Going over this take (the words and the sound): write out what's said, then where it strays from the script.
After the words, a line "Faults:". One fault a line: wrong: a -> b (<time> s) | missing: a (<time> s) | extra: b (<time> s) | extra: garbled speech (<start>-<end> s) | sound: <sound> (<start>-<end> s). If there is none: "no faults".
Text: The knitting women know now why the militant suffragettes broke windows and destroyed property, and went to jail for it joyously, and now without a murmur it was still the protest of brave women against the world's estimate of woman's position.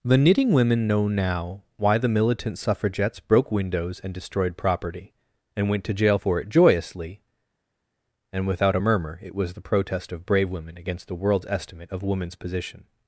The knitting women know now why the militant suffragettes broke windows and destroyed property, and went to jail for it joyously, and without a murmur it was the protest of brave women against the world's estimate of woman's position.
Faults:
missing: now (8.5 s)
missing: still (9.5 s)